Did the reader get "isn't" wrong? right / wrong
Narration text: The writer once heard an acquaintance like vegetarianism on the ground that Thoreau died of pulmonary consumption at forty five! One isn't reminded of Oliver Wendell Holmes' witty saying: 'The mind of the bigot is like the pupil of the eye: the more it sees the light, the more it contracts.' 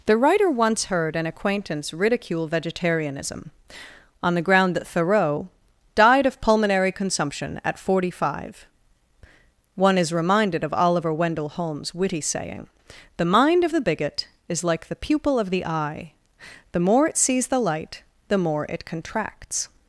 wrong